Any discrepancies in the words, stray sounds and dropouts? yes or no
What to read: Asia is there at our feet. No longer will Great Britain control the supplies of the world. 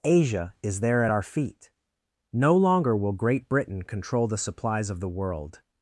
no